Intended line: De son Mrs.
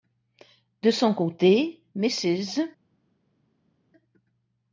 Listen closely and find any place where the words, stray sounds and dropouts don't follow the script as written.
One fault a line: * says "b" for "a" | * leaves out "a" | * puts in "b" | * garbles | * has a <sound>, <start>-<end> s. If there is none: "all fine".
* puts in "côté"